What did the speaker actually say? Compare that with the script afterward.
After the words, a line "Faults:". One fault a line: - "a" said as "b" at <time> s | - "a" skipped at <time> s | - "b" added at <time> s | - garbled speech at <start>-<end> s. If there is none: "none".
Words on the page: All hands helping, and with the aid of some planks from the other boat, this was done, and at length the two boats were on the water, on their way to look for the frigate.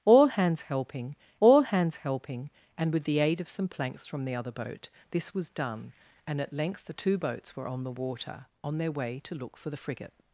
All hands helping all hands helping, and with the aid of some planks from the other boat, this was done, and at length the two boats were on the water, on their way to look for the frigate.
Faults:
- "all hands helping" added at 1.4 s